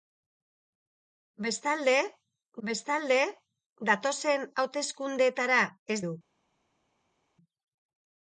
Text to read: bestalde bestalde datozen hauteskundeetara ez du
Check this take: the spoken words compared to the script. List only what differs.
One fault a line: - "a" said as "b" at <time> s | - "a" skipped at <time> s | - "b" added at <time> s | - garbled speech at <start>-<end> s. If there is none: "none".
none